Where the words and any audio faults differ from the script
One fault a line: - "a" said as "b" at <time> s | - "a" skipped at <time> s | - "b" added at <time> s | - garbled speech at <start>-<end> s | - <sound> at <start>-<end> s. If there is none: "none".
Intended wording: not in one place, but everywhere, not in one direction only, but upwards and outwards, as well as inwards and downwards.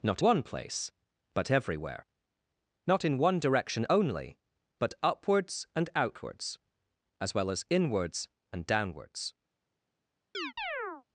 - "in" skipped at 0.2 s
- chirp at 10.3-11.0 s